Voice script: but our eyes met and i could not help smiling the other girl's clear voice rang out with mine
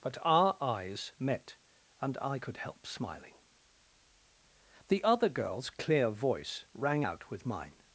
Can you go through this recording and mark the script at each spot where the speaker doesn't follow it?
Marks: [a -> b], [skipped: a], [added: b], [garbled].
but our eyes met and i could [skipped: not] help smiling the other girl's clear voice rang out with mine